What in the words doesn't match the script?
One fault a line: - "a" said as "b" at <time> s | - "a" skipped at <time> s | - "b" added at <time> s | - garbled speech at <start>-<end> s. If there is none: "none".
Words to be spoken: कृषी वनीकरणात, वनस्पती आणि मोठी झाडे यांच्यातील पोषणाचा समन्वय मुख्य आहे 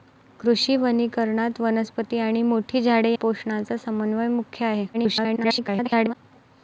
- "यांच्यातील" skipped at 3.1 s
- garbled speech at 4.9-6.1 s